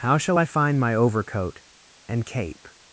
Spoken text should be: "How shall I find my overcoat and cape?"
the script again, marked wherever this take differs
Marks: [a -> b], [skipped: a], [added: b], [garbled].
"How shall I find my overcoat and cape?"